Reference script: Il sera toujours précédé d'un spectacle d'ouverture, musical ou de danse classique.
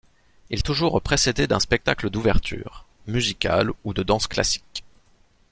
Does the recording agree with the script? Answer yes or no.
no